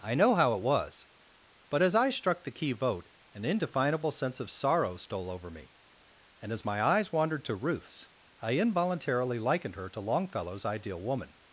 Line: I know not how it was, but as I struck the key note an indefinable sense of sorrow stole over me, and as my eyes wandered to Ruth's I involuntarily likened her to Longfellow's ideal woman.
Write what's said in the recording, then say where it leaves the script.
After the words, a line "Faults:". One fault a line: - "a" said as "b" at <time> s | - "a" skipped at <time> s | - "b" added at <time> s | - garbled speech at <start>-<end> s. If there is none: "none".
I know how it was, but as I struck the key vote an indefinable sense of sorrow stole over me, and as my eyes wandered to Ruth's I involuntarily likened her to Longfellow's ideal woman.
Faults:
- "not" skipped at 0.3 s
- "note" said as "vote" at 2.7 s